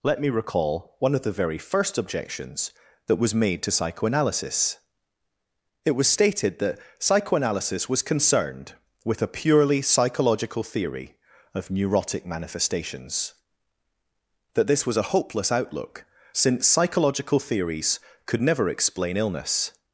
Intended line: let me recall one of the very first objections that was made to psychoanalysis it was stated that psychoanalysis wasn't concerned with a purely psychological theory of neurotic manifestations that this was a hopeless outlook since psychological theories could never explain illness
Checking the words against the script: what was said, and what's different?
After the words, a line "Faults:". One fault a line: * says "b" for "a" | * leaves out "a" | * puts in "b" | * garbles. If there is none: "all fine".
let me recall one of the very first objections that was made to psychoanalysis it was stated that psychoanalysis was concerned with a purely psychological theory of neurotic manifestations that this was a hopeless outlook since psychological theories could never explain illness
Faults:
* says "was" for "wasn't"